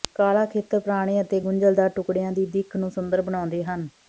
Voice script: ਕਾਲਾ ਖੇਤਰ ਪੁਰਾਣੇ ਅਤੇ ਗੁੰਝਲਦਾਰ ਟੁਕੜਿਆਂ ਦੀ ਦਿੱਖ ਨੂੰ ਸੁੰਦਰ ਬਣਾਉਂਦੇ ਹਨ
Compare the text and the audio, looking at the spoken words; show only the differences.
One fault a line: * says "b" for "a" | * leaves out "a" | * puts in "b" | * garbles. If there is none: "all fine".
all fine